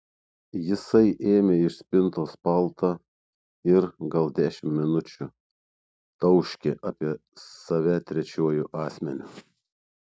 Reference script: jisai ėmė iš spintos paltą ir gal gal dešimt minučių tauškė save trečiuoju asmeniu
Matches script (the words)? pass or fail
fail